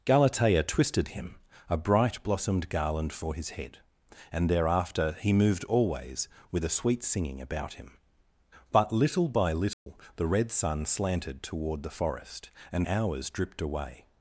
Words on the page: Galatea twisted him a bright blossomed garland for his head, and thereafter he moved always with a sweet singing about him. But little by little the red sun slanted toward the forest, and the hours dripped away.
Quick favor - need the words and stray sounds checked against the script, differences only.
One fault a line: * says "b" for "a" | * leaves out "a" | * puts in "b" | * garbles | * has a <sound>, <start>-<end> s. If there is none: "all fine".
* has a dropout, 9.7-9.9 s
* leaves out "the"